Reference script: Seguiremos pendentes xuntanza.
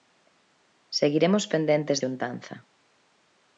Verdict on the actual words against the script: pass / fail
pass